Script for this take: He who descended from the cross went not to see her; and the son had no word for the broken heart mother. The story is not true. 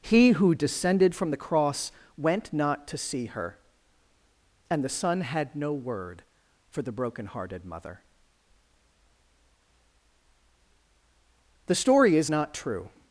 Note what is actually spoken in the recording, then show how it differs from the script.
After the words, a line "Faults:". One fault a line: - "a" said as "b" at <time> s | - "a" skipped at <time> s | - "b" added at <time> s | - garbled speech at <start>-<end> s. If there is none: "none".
He who descended from the cross went not to see her; and the son had no word for the broken hearted mother. The story is not true.
Faults:
- "heart" said as "hearted" at 7.3 s